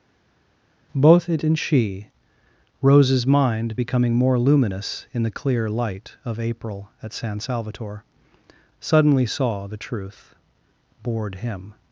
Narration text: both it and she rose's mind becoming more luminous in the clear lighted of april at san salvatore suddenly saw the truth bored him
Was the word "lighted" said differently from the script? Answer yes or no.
yes